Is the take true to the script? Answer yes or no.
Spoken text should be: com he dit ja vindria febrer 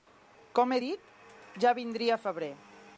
yes